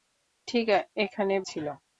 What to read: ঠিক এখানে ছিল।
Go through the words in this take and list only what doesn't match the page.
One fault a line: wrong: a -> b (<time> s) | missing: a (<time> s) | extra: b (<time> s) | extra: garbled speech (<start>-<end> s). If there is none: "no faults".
no faults